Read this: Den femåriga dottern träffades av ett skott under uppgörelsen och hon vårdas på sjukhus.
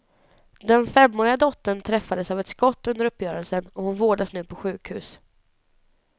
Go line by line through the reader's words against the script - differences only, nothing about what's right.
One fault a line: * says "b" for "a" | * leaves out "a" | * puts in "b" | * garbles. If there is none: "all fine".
* puts in "nu"